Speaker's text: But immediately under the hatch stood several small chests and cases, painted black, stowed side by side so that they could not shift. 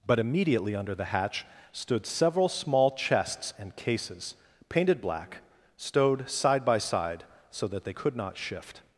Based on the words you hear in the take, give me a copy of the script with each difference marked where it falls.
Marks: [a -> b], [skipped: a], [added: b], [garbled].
But immediately under the hatch stood several small chests and cases, painted black, stowed side by side so that they could not shift.